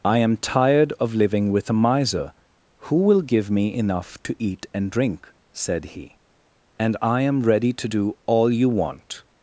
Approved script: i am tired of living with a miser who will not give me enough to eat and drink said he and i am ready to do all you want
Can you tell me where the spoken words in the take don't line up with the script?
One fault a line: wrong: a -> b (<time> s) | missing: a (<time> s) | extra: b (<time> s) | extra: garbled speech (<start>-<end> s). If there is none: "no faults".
missing: not (3.2 s)